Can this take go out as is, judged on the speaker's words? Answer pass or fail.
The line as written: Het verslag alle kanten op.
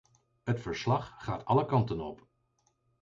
fail